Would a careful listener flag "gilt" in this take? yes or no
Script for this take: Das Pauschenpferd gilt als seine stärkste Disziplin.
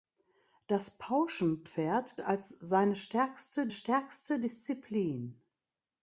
yes